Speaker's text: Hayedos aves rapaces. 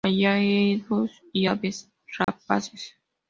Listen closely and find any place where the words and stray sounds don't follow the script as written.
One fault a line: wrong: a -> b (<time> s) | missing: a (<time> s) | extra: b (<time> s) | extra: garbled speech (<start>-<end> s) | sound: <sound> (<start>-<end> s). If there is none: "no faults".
extra: y (1.3 s)
sound: dropout (2.2-2.3 s)